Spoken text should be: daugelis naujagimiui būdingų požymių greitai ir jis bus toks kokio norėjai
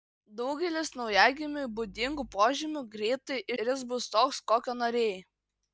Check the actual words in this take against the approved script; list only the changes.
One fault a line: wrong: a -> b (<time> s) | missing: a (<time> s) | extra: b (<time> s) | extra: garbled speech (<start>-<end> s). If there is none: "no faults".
no faults